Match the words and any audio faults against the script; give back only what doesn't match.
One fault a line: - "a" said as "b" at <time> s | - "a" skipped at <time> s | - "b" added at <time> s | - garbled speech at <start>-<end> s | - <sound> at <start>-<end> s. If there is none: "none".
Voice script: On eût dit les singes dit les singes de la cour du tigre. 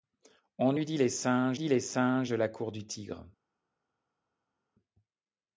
none